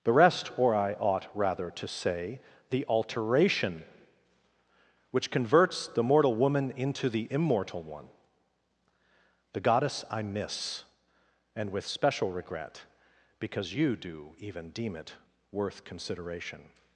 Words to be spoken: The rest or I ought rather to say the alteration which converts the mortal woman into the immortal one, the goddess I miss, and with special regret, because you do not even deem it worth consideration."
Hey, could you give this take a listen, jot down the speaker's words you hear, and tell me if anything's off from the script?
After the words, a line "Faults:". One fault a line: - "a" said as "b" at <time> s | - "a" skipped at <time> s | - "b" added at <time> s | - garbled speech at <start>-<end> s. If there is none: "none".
The rest or I ought rather to say the alteration which converts the mortal woman into the immortal one, the goddess I miss, and with special regret, because you do even deem it worth consideration."
Faults:
- "not" skipped at 14.3 s